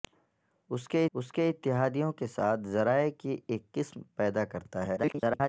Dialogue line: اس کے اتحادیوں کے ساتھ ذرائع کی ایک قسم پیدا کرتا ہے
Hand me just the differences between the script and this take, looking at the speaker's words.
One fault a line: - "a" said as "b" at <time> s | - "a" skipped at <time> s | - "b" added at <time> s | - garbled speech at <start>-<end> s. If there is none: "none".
- "اس کے" added at 1.1 s
- garbled speech at 5.0-5.5 s